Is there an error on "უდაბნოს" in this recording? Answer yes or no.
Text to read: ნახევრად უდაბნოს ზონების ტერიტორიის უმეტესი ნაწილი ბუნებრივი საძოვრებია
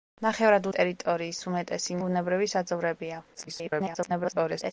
yes